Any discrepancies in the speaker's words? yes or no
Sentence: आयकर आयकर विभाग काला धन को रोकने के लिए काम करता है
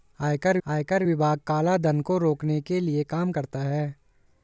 no